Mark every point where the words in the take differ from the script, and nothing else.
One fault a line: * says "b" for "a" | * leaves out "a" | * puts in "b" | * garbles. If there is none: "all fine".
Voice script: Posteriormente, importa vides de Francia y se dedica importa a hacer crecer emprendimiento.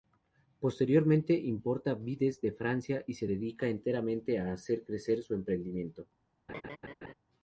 * says "enteramente" for "importa"
* puts in "su"